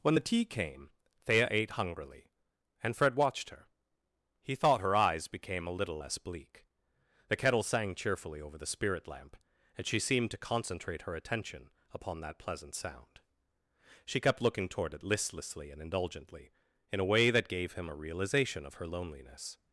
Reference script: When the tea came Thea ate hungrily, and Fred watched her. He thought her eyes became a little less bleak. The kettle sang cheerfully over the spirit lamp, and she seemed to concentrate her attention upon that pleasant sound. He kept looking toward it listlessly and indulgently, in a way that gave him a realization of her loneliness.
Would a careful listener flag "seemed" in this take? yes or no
no